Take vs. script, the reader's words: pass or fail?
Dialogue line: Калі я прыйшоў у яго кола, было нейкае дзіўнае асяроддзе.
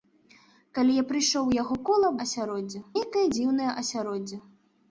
fail